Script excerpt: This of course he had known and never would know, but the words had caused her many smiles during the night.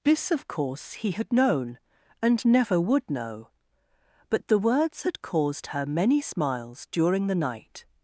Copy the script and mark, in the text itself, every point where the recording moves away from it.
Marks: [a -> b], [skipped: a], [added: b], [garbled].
This of course he had known and never would know, but the words had caused her many smiles during the night.